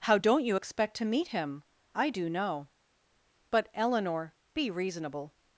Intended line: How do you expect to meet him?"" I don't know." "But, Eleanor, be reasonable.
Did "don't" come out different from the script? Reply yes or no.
yes